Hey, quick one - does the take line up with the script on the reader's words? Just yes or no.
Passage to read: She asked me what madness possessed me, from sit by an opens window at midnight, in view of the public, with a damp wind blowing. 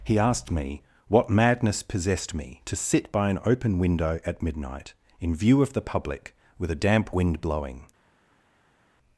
no